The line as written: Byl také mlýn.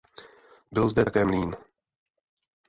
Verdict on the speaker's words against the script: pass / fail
fail